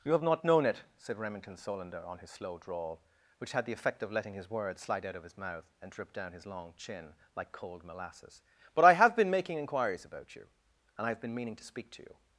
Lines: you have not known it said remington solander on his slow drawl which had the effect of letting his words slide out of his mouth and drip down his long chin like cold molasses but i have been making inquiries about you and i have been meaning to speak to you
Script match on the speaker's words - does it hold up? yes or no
yes